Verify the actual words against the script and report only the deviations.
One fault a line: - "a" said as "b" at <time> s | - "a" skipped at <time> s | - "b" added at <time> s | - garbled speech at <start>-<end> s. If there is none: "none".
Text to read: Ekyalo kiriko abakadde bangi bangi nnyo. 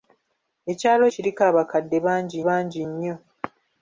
none